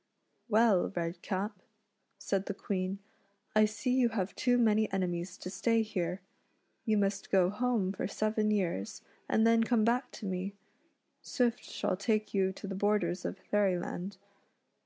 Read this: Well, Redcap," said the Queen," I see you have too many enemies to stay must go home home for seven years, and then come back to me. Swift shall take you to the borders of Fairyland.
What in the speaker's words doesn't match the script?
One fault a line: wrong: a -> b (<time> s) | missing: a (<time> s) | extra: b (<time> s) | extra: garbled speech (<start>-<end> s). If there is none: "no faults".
extra: here You (5.8 s)
missing: home (7.9 s)